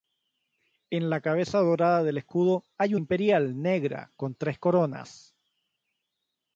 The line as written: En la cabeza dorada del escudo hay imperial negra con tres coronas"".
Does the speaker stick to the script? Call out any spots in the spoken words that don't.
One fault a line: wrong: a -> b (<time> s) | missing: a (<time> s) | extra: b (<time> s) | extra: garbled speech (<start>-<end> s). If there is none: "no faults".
no faults